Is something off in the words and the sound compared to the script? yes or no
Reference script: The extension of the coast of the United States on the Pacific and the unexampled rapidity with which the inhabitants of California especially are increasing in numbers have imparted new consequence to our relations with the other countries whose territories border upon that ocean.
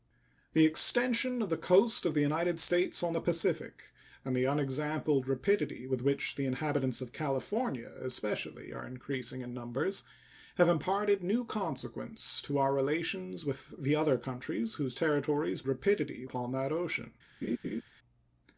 yes